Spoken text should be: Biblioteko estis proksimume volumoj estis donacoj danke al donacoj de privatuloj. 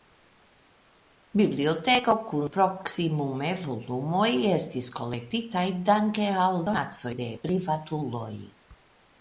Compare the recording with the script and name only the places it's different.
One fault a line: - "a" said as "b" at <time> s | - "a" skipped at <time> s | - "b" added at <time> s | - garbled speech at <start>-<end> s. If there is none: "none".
- "estis" said as "kun" at 2.3 s
- "donacoj" said as "kolektitaj" at 5.0 s